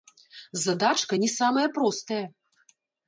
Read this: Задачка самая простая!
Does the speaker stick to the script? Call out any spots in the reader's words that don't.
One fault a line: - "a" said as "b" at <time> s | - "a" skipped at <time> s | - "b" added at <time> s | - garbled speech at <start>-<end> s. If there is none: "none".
- "не" added at 1.2 s